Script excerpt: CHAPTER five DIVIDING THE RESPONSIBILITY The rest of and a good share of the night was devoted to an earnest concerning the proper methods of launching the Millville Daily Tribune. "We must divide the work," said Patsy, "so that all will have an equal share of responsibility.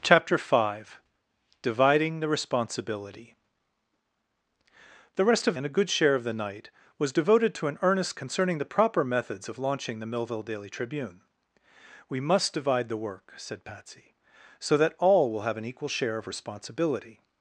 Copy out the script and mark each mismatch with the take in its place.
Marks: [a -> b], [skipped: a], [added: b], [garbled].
CHAPTER five DIVIDING THE RESPONSIBILITY The rest of and a good share of the night was devoted to an earnest concerning the proper methods of launching the Millville Daily Tribune. "We must divide the work," said Patsy, "so that all will have an equal share of responsibility.